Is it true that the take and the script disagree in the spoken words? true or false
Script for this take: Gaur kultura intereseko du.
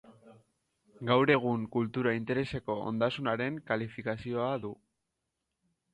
true